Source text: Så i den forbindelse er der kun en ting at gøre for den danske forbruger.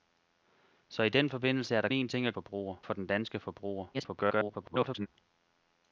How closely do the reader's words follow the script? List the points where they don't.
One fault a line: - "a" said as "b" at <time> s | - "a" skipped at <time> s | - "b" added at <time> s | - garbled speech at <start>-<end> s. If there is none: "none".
- "kun" skipped at 1.9 s
- "gøre" said as "forbruger" at 2.3 s
- garbled speech at 3.9-5.1 s